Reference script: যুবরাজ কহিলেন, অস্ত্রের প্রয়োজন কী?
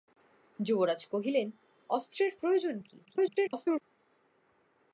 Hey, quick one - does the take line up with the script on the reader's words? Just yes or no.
no